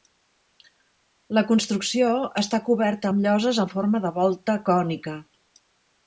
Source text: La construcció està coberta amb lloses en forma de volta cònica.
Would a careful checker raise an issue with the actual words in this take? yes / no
no